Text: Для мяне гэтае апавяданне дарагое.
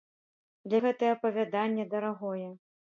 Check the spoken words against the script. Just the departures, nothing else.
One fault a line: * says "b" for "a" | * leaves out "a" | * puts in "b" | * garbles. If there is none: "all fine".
* leaves out "мяне"